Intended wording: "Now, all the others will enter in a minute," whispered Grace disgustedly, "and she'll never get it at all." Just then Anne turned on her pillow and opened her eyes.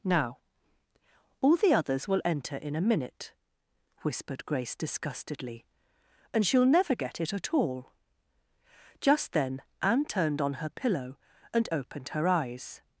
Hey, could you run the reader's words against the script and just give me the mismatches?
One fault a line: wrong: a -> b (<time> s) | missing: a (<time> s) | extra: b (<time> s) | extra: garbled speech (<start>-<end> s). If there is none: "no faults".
no faults